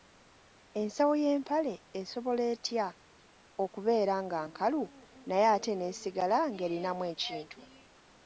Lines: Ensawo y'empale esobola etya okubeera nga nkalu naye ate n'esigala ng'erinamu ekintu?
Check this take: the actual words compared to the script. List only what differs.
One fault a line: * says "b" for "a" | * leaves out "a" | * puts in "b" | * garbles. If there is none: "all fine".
all fine